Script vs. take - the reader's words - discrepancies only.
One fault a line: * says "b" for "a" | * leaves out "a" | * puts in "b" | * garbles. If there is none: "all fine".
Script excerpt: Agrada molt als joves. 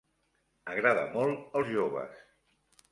all fine